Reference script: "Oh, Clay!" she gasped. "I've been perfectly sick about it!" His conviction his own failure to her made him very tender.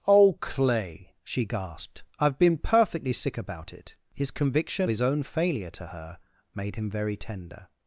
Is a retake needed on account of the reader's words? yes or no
no